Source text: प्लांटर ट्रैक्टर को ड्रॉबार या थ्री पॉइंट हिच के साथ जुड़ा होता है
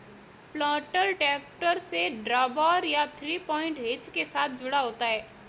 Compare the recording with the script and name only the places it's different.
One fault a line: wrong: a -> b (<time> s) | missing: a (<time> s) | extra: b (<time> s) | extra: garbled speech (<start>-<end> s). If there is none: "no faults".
wrong: को -> से (1.8 s)